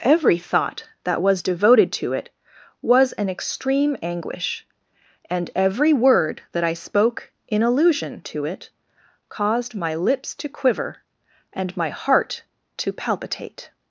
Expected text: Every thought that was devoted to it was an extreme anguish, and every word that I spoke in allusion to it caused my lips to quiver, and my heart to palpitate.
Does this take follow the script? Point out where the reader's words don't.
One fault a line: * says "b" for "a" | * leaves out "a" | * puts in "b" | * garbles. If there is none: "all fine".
all fine